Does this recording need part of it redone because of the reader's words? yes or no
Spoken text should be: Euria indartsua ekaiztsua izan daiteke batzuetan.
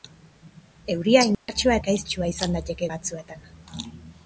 no